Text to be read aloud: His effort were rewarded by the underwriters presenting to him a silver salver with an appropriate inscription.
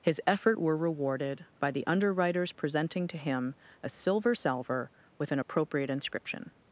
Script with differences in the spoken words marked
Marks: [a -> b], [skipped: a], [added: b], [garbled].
His effort were rewarded by the underwriters presenting to him a silver salver with an appropriate inscription.